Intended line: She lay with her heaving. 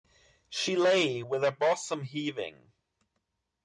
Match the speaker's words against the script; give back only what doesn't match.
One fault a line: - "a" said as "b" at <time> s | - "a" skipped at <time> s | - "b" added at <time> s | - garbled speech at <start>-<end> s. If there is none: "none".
- "bosom" added at 1.5 s